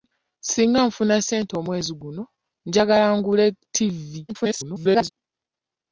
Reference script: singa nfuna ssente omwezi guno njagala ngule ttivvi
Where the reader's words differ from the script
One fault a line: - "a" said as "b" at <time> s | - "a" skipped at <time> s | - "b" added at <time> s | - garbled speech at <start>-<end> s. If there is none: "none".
- garbled speech at 4.3-5.1 s